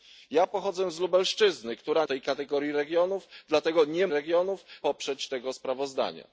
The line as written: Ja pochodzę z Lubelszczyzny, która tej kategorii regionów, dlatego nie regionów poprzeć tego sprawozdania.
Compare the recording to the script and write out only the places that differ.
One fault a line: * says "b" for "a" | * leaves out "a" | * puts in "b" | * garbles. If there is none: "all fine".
all fine